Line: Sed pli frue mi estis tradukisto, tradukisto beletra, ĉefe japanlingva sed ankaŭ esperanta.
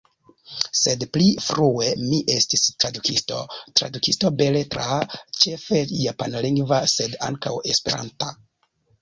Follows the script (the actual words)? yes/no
yes